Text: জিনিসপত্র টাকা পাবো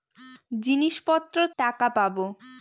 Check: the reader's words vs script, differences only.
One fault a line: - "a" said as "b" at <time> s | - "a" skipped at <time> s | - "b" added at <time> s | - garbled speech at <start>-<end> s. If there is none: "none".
none